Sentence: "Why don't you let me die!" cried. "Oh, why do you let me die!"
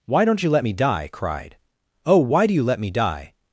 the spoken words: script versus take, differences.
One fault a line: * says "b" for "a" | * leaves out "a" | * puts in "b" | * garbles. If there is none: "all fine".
all fine